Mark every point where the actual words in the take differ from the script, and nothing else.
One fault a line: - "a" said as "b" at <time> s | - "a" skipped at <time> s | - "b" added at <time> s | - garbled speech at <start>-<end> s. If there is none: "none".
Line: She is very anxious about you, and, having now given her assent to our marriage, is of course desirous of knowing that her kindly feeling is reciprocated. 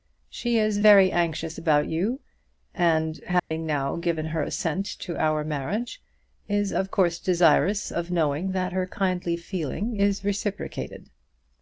none